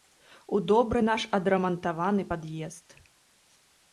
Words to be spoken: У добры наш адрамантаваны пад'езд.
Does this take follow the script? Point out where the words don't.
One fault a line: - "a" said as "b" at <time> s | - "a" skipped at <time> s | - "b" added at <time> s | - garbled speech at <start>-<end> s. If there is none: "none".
none